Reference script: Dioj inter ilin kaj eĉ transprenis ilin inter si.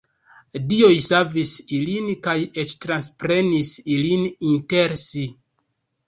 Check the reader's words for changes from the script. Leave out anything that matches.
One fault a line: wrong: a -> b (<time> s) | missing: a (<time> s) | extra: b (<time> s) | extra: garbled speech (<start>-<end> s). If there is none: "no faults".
wrong: inter -> savis (1.1 s)